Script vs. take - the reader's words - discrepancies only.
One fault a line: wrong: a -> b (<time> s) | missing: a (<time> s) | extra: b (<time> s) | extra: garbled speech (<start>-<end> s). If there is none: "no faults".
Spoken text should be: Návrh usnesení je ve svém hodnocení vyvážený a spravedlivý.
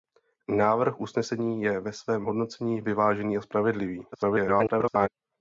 extra: garbled speech (4.1-5.1 s)